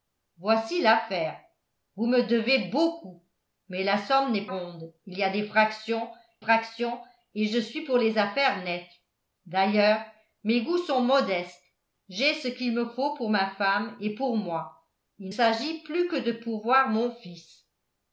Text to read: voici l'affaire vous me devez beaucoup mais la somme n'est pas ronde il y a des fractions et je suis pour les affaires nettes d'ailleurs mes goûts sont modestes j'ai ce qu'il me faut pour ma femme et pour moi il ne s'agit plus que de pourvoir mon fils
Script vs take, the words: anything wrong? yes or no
yes